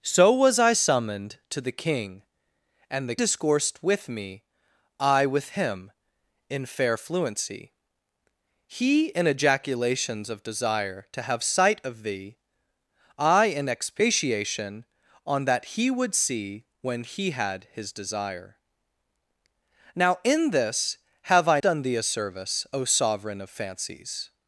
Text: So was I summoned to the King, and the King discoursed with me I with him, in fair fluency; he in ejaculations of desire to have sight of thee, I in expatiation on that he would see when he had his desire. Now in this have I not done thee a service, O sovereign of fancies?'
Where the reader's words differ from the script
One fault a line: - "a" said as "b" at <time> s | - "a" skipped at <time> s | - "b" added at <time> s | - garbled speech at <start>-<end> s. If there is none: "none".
- "King" skipped at 3.1 s
- "not" skipped at 21.6 s